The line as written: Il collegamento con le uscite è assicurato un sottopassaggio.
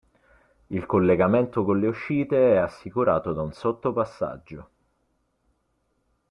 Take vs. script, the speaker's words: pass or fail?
fail